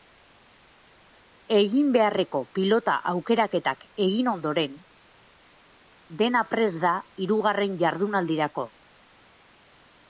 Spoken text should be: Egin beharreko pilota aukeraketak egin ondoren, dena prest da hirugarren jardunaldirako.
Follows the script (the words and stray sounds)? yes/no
yes